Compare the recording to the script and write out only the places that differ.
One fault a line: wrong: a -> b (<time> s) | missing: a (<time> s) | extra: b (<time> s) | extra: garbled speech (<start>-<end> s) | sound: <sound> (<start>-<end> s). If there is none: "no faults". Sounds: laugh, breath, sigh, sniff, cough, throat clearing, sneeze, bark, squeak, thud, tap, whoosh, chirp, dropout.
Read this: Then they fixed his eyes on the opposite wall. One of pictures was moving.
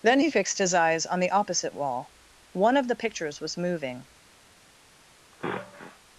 wrong: they -> he (0.2 s)
extra: the (2.9 s)
sound: sniff (5.3-6.0 s)